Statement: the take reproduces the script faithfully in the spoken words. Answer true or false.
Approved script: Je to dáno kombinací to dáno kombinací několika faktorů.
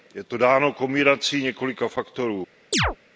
false